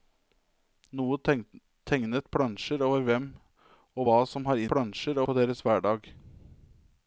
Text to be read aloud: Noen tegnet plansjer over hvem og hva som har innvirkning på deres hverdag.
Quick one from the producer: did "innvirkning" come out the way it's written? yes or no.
no